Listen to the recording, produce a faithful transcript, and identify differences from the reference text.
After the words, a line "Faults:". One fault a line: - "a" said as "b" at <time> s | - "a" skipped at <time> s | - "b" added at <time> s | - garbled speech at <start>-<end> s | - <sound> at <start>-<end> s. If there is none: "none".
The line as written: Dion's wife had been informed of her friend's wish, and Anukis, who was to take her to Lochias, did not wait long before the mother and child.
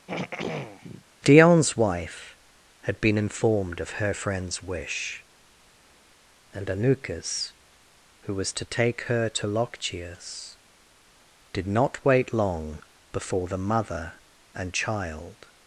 Dion's wife had been informed of her friend's wish, and Anukis, who was to take her to Lochias, did not wait long before the mother and child.
Faults:
- throat clearing at 0.1-1.1 s